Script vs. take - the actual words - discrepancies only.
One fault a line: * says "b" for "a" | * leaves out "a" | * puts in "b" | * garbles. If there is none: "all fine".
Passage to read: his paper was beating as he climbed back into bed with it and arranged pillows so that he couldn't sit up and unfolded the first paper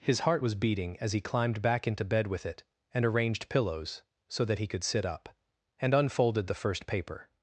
* says "heart" for "paper"
* says "could" for "couldn't"